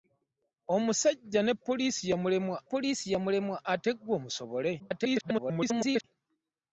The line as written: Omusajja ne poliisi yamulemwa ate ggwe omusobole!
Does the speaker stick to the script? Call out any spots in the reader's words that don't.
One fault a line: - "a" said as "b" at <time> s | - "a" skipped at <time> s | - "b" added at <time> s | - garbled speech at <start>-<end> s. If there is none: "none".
- "poliisi yamulemwa" added at 2.7 s
- garbled speech at 4.8-6.0 s